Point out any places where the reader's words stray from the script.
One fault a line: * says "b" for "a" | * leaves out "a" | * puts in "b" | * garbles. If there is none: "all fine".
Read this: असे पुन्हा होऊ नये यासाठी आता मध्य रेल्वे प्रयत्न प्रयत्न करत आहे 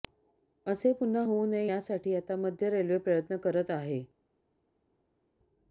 * leaves out "प्रयत्न"